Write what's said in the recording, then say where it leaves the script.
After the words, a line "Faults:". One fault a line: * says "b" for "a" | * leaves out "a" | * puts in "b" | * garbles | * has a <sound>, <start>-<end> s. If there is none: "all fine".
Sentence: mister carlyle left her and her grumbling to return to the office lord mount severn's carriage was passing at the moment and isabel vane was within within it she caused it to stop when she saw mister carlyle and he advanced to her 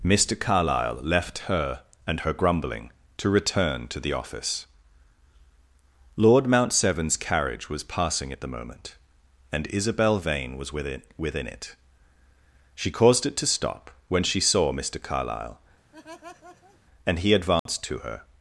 mister carlyle left her and her grumbling to return to the office lord mount severn's carriage was passing at the moment and isabel vane was within within it she caused it to stop when she saw mister carlyle and he advanced to her
Faults:
* has a laugh, 15.9-16.8 s
* has a dropout, 17.6-17.7 s